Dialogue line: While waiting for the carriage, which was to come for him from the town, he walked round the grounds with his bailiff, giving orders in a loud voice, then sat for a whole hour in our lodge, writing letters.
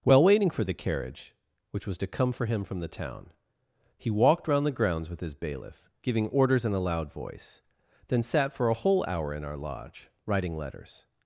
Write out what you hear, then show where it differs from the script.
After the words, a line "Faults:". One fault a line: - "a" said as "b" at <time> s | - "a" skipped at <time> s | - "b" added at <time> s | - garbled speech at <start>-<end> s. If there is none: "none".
While waiting for the carriage, which was to come for him from the town, he walked round the grounds with his bailiff, giving orders in a loud voice, then sat for a whole hour in our lodge, writing letters.
Faults:
none